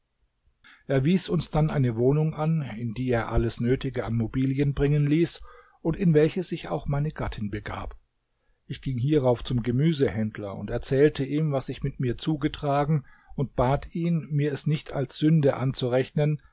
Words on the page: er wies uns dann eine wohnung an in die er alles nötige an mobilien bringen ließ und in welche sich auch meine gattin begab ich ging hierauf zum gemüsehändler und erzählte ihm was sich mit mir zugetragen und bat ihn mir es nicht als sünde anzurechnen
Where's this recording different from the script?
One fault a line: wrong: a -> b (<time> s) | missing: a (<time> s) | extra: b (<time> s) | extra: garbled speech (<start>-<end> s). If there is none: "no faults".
no faults